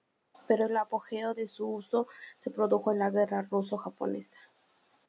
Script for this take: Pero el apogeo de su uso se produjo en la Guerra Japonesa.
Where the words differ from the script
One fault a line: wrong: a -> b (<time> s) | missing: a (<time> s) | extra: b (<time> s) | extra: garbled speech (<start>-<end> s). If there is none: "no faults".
extra: Ruso (3.4 s)